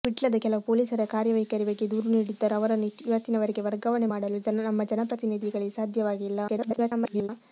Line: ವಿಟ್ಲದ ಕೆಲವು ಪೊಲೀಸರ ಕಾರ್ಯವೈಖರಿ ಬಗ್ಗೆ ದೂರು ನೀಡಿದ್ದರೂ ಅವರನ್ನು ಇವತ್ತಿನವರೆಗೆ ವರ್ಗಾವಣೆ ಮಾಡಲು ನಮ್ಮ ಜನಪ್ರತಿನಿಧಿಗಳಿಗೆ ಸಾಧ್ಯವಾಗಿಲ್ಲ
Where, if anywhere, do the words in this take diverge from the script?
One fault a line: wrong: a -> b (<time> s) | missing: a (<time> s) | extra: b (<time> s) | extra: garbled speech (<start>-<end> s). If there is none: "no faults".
extra: garbled speech (6.5-7.3 s)